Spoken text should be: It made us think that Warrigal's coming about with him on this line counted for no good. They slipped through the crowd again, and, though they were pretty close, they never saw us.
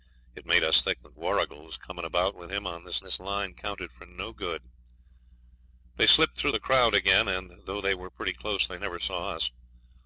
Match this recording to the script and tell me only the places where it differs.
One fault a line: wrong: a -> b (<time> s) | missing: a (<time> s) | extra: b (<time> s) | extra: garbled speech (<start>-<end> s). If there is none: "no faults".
extra: this (3.0 s)